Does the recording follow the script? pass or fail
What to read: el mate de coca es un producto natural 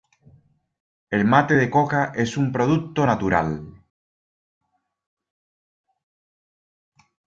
pass